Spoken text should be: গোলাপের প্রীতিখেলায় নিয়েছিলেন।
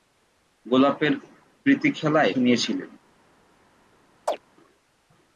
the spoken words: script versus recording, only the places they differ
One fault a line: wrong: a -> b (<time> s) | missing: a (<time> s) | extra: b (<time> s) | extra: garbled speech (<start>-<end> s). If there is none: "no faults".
no faults